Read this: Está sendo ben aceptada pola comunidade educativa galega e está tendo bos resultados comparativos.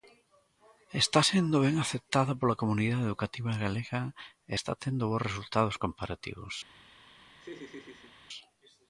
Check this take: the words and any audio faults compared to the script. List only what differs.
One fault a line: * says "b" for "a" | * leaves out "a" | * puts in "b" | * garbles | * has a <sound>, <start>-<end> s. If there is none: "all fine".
* has a laugh, 7.4-8.2 s